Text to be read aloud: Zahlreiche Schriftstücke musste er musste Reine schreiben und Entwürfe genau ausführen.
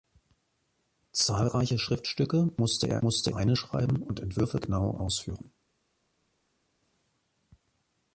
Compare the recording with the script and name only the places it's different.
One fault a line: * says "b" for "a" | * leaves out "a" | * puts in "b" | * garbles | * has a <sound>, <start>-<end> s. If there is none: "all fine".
all fine